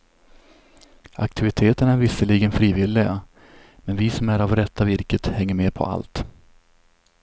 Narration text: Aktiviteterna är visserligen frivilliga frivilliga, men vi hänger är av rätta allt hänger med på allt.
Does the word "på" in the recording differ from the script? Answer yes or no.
no